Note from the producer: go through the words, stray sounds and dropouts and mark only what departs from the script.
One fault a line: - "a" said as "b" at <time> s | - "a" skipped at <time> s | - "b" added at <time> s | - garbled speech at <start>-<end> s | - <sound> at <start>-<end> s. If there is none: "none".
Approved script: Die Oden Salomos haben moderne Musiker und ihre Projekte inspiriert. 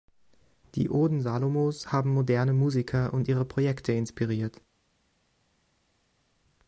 none